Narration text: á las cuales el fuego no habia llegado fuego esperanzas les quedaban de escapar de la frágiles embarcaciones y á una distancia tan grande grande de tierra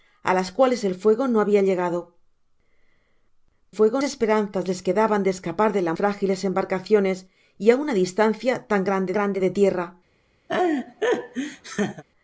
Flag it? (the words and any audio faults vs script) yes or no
yes